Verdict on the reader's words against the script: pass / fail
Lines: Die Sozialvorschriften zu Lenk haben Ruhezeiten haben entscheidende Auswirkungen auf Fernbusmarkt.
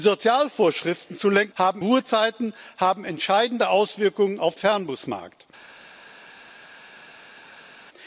pass